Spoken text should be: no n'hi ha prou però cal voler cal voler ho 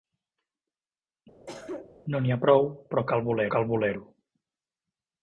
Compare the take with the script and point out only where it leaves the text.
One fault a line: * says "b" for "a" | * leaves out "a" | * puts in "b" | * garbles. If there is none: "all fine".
all fine